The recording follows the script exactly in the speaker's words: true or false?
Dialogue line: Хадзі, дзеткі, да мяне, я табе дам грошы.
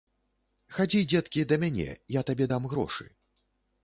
true